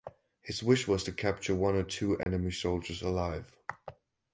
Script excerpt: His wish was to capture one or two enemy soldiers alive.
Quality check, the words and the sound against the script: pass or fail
fail